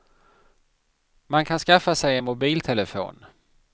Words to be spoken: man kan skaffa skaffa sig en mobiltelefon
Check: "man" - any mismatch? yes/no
no